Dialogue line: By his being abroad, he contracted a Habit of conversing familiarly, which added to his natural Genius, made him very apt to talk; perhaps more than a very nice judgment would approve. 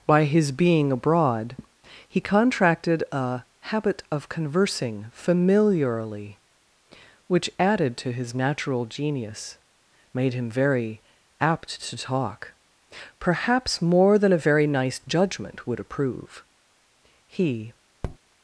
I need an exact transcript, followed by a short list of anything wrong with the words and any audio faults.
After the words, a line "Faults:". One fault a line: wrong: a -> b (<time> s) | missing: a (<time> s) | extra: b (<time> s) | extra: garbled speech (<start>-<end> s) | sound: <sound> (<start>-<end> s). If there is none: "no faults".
By his being abroad, he contracted a Habit of conversing familiarly, which added to his natural Genius, made him very apt to talk; perhaps more than a very nice judgment would approve. He
Faults:
extra: He (17.3 s)
sound: tap (18.0-18.2 s)